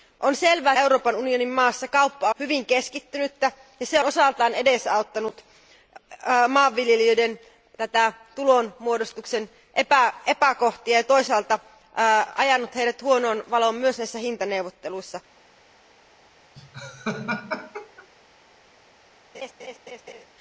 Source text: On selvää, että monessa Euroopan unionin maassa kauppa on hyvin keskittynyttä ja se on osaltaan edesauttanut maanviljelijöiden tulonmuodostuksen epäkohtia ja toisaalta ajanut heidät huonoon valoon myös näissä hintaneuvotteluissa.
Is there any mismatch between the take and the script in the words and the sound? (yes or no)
yes